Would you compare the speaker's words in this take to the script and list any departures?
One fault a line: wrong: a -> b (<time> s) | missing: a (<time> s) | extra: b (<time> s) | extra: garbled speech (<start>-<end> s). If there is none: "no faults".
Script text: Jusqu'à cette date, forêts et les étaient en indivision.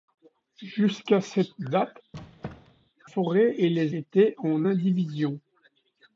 no faults